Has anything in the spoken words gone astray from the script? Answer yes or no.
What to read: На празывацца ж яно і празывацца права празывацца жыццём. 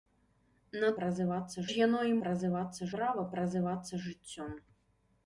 no